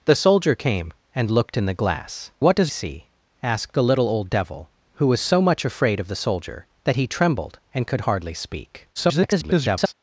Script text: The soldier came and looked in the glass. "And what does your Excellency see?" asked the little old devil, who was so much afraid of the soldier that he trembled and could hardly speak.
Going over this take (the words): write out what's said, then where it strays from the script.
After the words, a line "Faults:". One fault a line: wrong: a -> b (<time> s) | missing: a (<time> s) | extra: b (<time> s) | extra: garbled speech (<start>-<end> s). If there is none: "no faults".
The soldier came and looked in the glass. "What does see?" asked the little old devil, who was so much afraid of the soldier that he trembled and could hardly speak. [garbled]
Faults:
missing: And (2.3 s)
missing: your Excellency (2.7 s)
extra: garbled speech (9.0-9.9 s)